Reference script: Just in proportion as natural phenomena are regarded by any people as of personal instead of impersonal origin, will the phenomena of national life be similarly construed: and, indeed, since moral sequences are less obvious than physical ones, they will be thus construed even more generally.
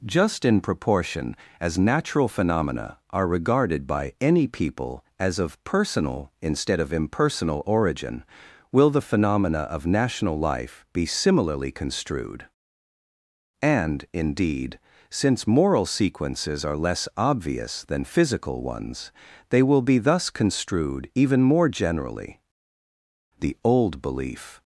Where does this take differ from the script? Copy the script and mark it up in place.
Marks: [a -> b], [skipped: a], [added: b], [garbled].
Just in proportion as natural phenomena are regarded by any people as of personal instead of impersonal origin, will the phenomena of national life be similarly construed: and, indeed, since moral sequences are less obvious than physical ones, they will be thus construed even more generally. [added: The old belief]